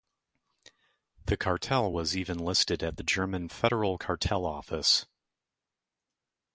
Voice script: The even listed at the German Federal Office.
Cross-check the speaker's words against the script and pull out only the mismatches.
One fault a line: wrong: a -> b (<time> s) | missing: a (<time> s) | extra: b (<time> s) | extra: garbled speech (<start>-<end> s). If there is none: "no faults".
extra: cartel was (1.4 s)
extra: Cartel (3.9 s)